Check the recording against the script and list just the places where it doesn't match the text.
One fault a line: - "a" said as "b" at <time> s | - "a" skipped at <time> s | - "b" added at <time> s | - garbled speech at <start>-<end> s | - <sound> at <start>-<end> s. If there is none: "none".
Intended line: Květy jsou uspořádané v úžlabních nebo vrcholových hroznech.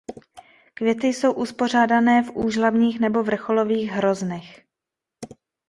none